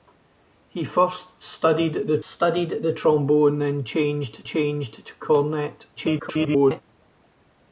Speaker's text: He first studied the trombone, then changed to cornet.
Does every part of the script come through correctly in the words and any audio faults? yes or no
no